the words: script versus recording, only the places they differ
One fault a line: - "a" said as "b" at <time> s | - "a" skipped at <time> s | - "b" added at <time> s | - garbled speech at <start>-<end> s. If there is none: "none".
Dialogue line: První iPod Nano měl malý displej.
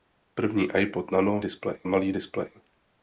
- "měl" said as "displej" at 1.4 s